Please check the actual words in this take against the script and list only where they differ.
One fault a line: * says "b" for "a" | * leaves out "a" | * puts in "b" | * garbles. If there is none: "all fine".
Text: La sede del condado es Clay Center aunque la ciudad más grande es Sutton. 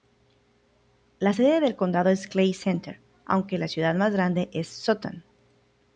all fine